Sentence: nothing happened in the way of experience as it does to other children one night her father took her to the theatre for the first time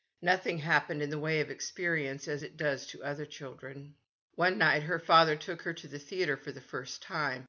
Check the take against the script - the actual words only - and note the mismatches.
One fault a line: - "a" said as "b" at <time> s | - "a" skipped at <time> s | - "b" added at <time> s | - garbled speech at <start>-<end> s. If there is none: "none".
none